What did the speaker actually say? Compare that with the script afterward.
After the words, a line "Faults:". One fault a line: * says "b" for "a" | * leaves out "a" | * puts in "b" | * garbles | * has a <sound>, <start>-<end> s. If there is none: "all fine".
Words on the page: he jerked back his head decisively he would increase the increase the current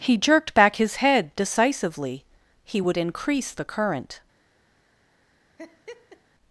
he jerked back his head decisively he would increase the current
Faults:
* leaves out "increase the"
* has a laugh, 5.6-6.2 s